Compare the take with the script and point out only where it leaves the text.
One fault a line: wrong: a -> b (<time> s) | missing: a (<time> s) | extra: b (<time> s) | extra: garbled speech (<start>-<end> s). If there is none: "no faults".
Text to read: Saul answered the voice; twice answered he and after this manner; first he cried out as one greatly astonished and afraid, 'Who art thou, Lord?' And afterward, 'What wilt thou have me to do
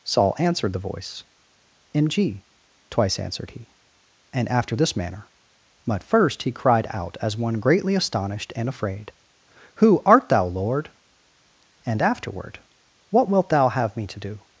extra: in g (1.9 s)
extra: but (5.9 s)